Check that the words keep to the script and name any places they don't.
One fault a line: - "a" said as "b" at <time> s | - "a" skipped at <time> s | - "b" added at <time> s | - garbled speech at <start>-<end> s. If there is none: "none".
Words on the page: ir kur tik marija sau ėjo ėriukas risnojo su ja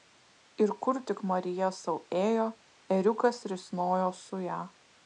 none